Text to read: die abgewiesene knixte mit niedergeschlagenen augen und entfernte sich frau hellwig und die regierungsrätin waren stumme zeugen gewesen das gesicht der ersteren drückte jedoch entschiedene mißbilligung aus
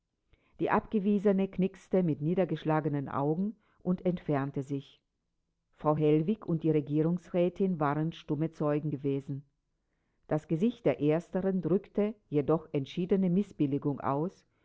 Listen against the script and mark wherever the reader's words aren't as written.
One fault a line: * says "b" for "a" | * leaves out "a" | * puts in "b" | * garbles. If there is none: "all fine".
all fine